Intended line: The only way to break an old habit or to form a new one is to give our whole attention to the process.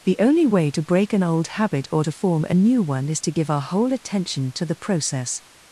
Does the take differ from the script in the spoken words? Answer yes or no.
no